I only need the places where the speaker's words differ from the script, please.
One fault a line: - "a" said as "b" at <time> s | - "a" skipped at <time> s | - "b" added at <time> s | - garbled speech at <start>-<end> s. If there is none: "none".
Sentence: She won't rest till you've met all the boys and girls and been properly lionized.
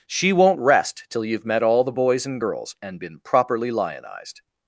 none